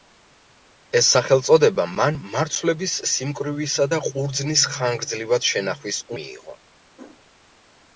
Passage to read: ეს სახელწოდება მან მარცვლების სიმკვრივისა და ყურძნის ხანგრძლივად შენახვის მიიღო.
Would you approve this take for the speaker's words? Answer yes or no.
yes